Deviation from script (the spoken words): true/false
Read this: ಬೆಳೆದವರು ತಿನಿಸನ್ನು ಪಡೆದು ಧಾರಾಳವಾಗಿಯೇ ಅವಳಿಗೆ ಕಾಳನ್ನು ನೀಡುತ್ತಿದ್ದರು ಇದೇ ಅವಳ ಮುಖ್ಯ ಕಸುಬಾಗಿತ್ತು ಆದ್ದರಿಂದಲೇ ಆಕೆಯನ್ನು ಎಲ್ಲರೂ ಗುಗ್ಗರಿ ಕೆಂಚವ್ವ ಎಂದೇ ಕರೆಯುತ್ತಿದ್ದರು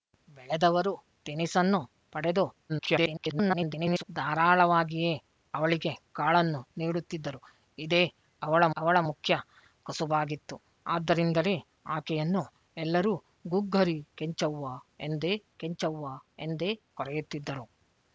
true